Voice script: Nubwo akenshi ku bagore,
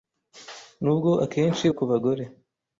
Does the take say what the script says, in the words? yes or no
yes